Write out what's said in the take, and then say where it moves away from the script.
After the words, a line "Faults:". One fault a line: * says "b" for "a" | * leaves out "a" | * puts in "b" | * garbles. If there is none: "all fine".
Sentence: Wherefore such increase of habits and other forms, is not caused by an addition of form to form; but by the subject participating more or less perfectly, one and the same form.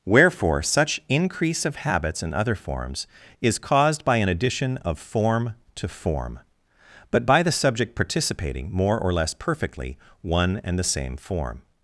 Wherefore such increase of habits and other forms, is caused by an addition of form to form; but by the subject participating more or less perfectly, one and the same form.
Faults:
* leaves out "not"